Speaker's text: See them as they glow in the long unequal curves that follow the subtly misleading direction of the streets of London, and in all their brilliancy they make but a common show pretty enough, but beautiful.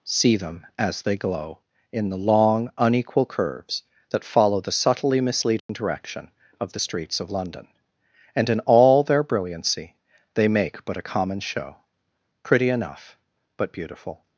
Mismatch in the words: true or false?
false